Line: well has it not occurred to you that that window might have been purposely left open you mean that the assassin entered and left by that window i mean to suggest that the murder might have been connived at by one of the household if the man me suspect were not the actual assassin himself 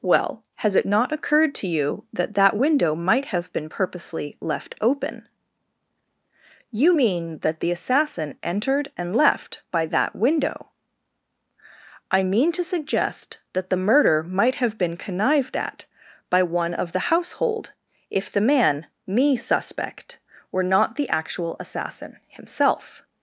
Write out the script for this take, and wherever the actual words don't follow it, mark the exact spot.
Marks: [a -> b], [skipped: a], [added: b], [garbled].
well has it not occurred to you that that window might have been purposely left open you mean that the assassin entered and left by that window i mean to suggest that the murder might have been connived at by one of the household if the man me suspect were not the actual assassin himself